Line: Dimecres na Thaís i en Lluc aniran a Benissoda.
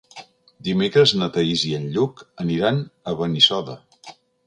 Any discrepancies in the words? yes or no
no